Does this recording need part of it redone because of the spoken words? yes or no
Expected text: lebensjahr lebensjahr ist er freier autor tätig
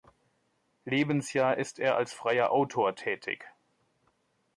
yes